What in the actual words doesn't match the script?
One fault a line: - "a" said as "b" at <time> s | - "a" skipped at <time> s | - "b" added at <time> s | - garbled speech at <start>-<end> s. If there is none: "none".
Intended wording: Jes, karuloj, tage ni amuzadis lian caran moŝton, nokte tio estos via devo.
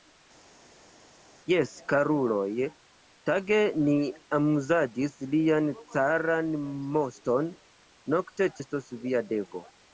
- "tio" skipped at 8.5 s